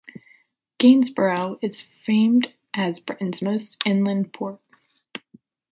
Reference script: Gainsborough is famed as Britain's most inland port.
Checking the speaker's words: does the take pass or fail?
pass